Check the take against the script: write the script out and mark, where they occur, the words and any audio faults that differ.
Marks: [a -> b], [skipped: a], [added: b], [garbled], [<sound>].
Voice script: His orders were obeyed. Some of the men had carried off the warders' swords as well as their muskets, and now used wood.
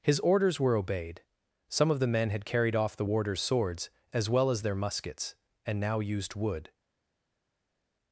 His orders were obeyed. Some of the men had carried off the warders' swords as well as their muskets, and now used wood.